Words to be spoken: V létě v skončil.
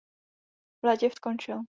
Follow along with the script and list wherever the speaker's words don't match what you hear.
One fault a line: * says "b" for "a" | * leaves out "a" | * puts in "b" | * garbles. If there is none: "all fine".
all fine